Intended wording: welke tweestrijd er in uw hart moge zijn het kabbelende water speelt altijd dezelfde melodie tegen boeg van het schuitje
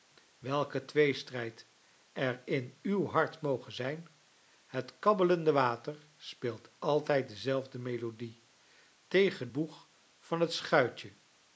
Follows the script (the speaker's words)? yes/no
yes